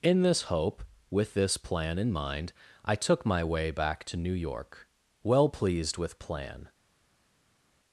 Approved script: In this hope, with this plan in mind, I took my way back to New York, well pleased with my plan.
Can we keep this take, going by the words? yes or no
no